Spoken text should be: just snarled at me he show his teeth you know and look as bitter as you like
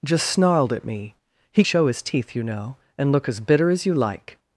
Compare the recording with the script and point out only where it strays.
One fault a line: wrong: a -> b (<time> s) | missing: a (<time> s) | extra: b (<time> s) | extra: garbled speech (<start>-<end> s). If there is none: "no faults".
no faults